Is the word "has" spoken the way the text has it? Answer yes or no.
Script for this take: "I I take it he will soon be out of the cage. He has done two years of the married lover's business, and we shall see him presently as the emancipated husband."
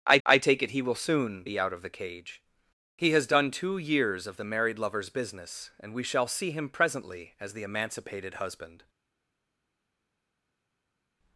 yes